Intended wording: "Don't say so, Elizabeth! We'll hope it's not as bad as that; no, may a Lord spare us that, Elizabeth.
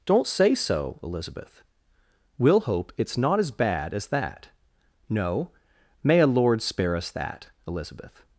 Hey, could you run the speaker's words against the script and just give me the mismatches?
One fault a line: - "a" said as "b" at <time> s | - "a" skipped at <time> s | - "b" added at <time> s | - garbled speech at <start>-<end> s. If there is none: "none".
none